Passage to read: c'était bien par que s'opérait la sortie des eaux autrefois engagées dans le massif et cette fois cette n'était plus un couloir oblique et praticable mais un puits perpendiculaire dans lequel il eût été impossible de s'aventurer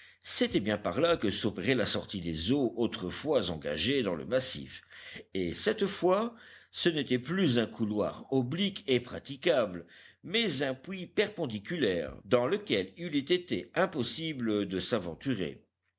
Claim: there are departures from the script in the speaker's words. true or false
true